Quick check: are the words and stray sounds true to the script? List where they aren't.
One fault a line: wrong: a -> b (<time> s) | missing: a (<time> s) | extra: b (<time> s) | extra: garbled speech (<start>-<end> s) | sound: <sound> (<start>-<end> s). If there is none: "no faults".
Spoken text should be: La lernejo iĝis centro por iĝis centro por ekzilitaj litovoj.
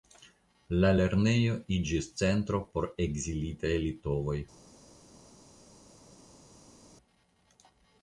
missing: iĝis centro por (2.9 s)